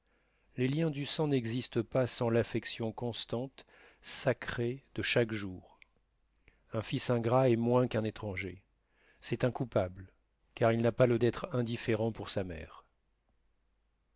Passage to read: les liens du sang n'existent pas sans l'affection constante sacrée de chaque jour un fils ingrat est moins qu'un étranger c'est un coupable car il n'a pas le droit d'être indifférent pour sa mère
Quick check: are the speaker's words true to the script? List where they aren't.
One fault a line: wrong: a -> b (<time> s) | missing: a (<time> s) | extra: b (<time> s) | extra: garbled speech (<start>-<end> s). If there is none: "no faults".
missing: droit (11.2 s)